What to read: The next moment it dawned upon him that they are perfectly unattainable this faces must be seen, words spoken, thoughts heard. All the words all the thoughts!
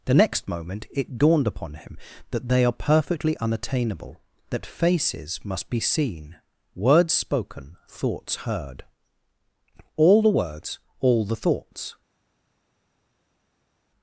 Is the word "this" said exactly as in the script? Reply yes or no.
no